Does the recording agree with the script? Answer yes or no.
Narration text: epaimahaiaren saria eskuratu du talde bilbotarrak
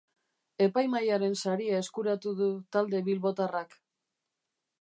yes